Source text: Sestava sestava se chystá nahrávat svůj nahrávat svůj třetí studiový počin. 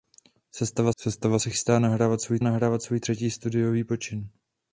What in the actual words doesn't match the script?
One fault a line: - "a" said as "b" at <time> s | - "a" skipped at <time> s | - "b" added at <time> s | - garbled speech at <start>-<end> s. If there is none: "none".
none